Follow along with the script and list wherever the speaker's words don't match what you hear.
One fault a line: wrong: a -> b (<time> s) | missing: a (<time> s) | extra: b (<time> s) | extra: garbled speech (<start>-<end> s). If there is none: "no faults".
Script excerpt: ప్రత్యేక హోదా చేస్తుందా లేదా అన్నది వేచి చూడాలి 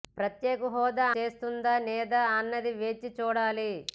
no faults